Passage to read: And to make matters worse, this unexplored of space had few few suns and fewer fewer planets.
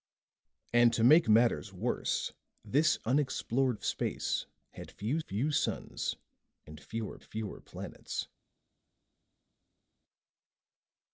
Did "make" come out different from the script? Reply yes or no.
no